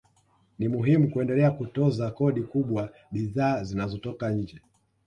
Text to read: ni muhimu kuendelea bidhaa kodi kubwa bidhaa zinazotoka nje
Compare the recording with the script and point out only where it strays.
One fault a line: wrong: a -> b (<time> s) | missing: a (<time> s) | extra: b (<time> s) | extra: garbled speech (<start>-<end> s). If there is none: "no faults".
wrong: bidhaa -> kutoza (1.5 s)